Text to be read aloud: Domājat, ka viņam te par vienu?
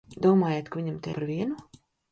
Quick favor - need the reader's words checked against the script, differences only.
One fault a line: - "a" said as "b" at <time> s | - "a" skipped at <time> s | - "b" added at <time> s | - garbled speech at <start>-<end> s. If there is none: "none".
none